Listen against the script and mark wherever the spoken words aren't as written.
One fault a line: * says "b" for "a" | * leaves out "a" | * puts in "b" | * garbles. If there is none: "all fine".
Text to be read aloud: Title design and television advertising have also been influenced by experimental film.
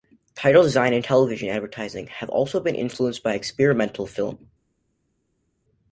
all fine